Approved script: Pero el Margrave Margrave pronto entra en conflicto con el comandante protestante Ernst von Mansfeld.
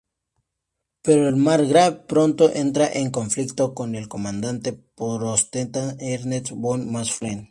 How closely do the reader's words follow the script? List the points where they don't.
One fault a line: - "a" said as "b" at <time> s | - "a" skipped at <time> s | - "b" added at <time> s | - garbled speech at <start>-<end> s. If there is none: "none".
- "Margrave" skipped at 2.0 s